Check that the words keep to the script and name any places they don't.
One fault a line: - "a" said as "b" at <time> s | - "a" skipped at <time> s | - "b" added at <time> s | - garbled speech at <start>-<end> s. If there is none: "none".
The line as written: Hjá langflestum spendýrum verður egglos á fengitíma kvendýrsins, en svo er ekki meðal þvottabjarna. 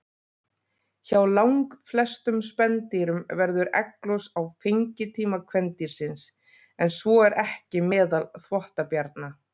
none